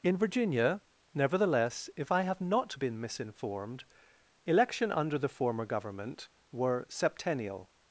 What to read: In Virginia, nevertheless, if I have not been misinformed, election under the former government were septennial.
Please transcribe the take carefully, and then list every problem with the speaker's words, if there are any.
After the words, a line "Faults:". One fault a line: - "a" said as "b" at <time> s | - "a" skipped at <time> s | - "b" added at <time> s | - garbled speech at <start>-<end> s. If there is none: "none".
In Virginia, nevertheless, if I have not been misinformed, election under the former government were septennial.
Faults:
none